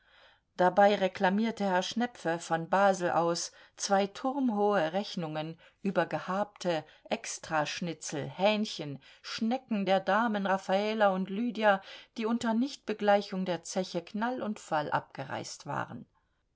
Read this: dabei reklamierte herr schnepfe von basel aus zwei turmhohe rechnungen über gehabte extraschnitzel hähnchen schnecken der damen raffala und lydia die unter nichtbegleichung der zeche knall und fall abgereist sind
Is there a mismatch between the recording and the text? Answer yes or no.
yes